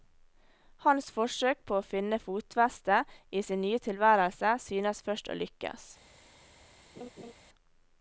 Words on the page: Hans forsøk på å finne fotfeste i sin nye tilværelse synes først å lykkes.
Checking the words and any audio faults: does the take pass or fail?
fail